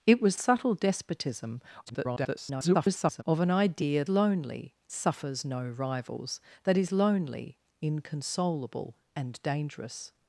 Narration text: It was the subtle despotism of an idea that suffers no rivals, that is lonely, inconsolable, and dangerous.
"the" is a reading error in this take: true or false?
true